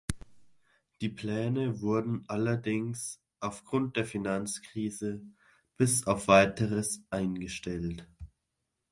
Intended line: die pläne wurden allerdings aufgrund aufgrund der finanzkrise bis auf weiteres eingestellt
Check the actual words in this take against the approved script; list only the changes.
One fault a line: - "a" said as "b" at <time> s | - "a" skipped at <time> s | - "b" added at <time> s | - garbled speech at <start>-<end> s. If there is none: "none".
- "aufgrund" skipped at 4.0 s